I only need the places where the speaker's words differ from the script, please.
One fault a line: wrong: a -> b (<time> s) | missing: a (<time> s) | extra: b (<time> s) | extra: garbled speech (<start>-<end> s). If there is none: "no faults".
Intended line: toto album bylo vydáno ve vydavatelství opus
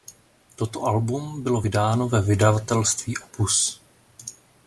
no faults